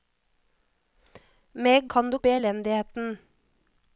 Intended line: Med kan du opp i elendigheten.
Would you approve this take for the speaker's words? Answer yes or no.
yes